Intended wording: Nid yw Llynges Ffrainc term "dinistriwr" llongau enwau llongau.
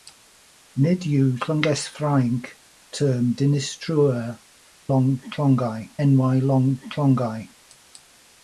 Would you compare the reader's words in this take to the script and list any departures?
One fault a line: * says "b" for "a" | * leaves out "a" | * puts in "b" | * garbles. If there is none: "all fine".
all fine